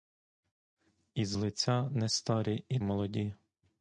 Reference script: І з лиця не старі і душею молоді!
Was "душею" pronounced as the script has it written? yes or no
no